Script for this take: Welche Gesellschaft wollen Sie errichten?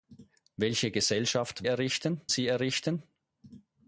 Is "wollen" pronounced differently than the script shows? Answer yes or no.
yes